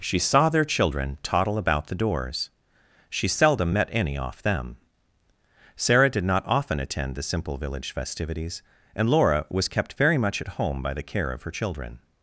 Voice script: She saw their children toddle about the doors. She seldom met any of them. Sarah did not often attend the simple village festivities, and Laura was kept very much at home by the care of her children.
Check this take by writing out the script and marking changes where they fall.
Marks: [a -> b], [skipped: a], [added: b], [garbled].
She saw their children toddle about the doors. She seldom met any [of -> off] them. Sarah did not often attend the simple village festivities, and Laura was kept very much at home by the care of her children.